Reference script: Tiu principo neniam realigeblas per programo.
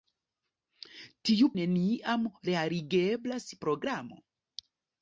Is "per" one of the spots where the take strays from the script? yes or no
yes